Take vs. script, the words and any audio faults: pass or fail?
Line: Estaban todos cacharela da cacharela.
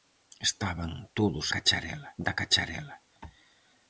pass